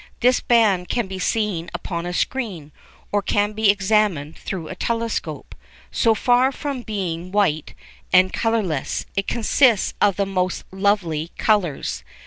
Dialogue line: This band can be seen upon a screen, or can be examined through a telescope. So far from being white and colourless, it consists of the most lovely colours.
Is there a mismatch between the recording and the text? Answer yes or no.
no